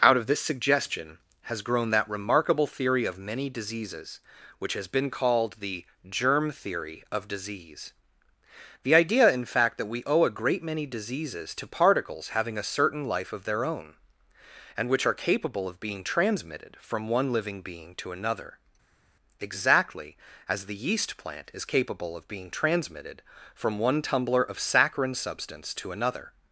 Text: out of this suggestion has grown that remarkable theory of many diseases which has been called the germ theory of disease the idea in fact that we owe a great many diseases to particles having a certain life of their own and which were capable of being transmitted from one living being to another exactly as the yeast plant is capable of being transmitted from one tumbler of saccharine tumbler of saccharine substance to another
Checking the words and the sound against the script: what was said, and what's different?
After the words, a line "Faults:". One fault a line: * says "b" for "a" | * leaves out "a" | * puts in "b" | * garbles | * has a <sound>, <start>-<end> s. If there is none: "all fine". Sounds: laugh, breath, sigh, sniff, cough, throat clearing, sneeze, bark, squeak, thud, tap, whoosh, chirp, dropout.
out of this suggestion has grown that remarkable theory of many diseases which has been called the germ theory of disease the idea in fact that we owe a great many diseases to particles having a certain life of their own and which are capable of being transmitted from one living being to another exactly as the yeast plant is capable of being transmitted from one tumbler of saccharine substance to another
Faults:
* says "are" for "were"
* leaves out "tumbler of saccharine"